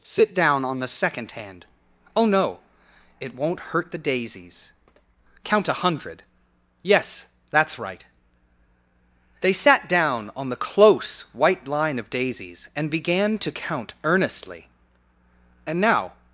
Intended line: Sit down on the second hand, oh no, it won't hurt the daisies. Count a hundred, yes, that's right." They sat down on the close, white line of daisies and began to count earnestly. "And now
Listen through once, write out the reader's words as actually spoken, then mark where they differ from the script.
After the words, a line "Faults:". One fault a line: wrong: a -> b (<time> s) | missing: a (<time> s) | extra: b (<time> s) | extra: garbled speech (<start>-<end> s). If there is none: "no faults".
Sit down on the second hand, oh no, it won't hurt the daisies. Count a hundred, yes, that's right." They sat down on the close, white line of daisies and began to count earnestly. "And now
Faults:
no faults